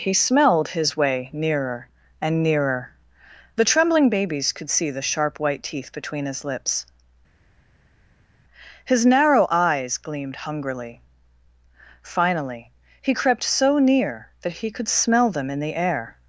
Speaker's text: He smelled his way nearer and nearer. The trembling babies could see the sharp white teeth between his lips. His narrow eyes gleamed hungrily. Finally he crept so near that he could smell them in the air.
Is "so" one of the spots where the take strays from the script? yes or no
no